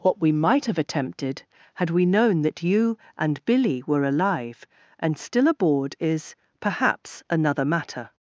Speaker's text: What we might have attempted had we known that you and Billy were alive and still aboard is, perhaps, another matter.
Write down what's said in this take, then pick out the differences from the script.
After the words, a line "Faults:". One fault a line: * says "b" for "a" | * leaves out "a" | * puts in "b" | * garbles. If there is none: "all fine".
What we might have attempted had we known that you and Billy were alive and still aboard is, perhaps, another matter.
Faults:
all fine